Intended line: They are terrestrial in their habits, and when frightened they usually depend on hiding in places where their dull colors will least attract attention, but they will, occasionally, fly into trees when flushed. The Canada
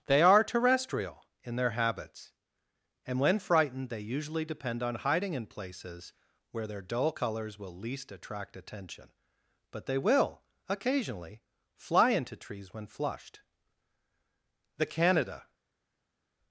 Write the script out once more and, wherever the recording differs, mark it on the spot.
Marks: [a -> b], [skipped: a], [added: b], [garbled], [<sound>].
They are terrestrial in their habits, and when frightened they usually depend on hiding in places where their dull colors will least attract attention, but they will, occasionally, fly into trees when flushed. The Canada